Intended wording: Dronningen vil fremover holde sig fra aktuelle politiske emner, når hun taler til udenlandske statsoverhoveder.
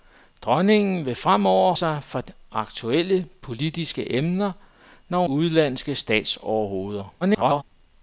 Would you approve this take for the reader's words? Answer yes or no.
no